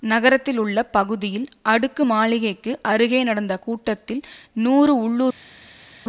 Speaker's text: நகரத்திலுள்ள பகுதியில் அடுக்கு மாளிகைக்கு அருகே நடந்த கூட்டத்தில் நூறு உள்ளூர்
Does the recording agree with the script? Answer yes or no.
yes